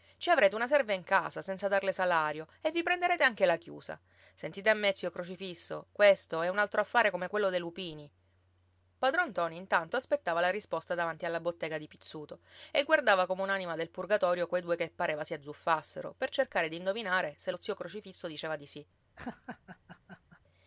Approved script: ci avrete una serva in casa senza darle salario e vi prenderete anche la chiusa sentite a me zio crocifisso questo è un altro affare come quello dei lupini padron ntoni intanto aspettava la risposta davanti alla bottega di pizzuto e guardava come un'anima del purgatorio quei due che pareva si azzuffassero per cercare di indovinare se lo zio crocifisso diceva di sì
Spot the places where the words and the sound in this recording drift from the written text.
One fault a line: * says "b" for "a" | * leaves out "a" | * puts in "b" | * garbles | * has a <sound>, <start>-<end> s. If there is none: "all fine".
* has a laugh, 19.2-20.4 s